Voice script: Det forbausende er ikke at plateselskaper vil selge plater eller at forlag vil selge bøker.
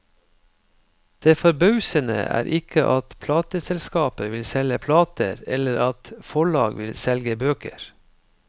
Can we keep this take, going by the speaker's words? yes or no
yes